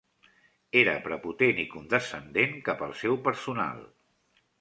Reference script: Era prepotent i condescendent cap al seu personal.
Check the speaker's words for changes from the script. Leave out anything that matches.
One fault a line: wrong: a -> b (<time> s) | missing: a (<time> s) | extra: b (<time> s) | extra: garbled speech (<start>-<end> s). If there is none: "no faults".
no faults